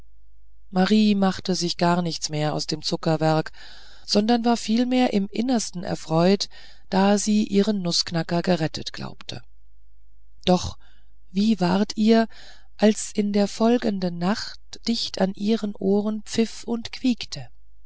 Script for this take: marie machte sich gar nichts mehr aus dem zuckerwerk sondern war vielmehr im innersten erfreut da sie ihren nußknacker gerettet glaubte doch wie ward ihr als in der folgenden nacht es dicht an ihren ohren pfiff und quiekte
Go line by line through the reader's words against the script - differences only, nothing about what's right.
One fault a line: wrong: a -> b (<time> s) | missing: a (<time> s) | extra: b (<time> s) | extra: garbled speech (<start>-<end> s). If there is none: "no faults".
missing: es (14.8 s)